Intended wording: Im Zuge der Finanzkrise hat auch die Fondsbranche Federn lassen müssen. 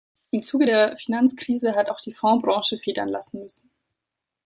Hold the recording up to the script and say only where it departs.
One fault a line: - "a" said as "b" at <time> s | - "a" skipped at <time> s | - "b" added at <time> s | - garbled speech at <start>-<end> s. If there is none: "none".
none